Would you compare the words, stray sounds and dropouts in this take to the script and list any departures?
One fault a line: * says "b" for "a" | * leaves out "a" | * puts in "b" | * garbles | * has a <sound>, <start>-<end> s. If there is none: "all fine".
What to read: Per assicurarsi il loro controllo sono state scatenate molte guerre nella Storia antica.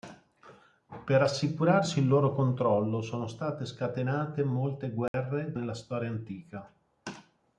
* has a dropout, 5.1-5.1 s